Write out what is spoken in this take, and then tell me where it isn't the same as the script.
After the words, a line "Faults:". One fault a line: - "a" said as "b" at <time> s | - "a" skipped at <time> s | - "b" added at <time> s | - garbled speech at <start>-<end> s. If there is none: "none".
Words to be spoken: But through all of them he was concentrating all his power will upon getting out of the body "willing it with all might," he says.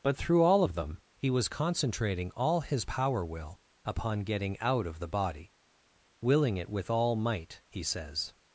But through all of them he was concentrating all his power will upon getting out of the body "willing it with all might," he says.
Faults:
none